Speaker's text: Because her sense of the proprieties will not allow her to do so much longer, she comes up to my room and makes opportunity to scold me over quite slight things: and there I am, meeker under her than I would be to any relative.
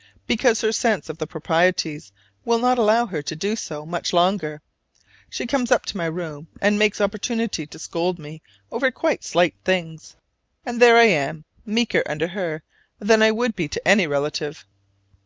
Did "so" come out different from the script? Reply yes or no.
no